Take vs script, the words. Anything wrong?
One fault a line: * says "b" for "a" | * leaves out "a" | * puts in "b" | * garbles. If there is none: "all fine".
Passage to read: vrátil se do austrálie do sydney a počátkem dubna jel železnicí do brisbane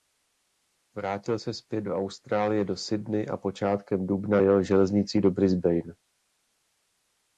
* puts in "zpět"